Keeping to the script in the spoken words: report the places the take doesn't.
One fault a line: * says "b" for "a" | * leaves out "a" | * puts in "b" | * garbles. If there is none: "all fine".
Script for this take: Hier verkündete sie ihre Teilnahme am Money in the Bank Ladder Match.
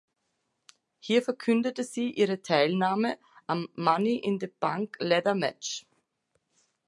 all fine